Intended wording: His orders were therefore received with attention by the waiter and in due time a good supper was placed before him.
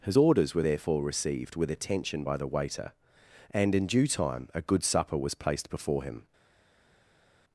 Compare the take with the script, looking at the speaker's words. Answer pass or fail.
pass